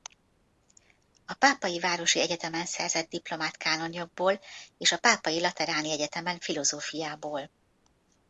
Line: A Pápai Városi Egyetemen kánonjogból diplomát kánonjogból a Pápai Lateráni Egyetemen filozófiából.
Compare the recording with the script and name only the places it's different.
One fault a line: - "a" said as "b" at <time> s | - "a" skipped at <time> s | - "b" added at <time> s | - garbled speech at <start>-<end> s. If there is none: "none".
- "kánonjogból" said as "szerzett" at 2.6 s
- "és" added at 4.8 s